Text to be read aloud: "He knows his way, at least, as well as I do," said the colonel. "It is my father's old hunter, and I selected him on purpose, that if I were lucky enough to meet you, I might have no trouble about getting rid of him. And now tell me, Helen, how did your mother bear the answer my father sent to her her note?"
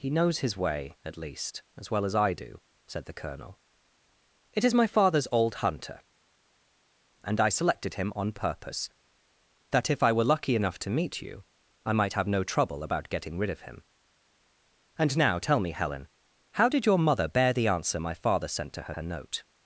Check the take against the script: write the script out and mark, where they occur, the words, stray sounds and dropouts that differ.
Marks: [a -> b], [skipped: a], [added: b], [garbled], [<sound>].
"He knows his way, at least, as well as I do," said the colonel. "It is my father's old hunter, and I selected him on purpose, that if I were lucky enough to meet you, I might have no trouble about getting rid of him. And now tell me, Helen, how did your mother bear the answer my father sent to her her note?"